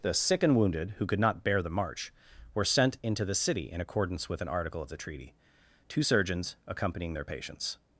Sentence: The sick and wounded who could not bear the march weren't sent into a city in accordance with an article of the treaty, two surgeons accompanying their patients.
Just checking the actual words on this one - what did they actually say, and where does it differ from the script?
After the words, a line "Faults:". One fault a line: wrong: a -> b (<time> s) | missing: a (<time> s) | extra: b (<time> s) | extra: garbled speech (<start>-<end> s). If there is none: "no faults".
The sick and wounded who could not bear the march were sent into the city in accordance with an article of the treaty, two surgeons accompanying their patients.
Faults:
wrong: weren't -> were (2.5 s)
wrong: a -> the (3.2 s)